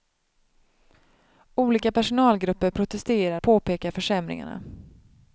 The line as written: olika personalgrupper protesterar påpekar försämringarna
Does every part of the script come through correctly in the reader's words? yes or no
yes